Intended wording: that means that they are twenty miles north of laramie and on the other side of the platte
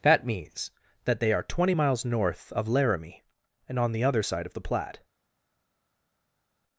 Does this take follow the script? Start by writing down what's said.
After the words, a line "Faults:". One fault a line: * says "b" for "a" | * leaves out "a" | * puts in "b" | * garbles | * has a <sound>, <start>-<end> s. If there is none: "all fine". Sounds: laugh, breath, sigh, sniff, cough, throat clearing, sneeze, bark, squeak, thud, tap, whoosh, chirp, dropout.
that means that they are twenty miles north of laramie and on the other side of the platte
Faults:
all fine